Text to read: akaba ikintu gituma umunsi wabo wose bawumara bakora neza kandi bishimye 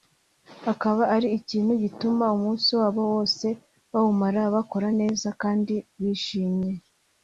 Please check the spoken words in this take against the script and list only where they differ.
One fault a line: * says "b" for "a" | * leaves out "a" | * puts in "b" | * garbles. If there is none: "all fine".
* puts in "ari"